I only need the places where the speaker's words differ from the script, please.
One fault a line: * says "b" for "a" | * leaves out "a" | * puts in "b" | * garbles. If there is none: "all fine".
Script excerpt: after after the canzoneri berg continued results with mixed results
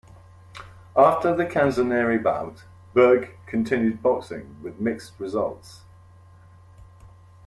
* leaves out "after"
* puts in "bout"
* says "boxing" for "results"